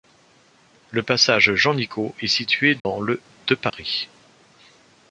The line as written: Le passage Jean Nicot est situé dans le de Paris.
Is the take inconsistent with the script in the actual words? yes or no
no